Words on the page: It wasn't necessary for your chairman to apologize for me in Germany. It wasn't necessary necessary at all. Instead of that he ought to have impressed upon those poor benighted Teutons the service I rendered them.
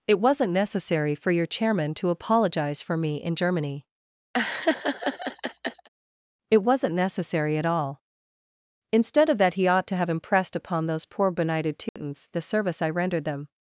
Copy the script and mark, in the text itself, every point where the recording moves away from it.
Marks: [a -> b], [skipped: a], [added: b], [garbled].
It wasn't necessary for your chairman to apologize for me in Germany. It wasn't necessary [skipped: necessary] at all. Instead of that he ought to have impressed upon those poor benighted Teutons the service I rendered them.